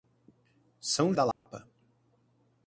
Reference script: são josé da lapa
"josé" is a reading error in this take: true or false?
true